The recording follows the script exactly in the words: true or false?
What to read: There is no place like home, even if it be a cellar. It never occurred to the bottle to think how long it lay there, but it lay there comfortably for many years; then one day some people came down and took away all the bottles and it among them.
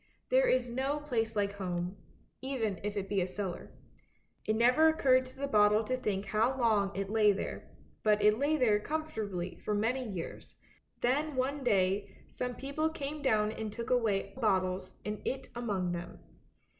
false